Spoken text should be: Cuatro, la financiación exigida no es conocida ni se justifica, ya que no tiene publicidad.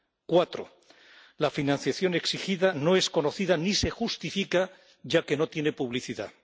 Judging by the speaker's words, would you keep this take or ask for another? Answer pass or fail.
pass